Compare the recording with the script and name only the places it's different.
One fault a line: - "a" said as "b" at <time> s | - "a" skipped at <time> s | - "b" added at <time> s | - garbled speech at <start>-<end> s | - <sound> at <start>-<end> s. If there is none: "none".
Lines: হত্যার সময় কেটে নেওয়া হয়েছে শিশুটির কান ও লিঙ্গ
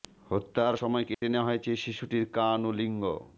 - dropout at 1.1-1.2 s